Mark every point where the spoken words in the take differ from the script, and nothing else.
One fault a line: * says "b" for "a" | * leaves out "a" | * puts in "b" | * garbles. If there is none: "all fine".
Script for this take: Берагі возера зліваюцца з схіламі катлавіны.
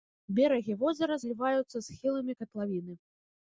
all fine